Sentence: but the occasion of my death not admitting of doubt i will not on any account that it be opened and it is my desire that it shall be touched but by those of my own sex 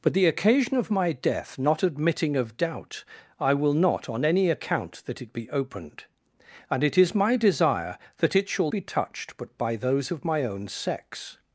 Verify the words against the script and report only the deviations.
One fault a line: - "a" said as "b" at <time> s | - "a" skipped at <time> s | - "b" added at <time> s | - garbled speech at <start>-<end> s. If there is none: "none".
none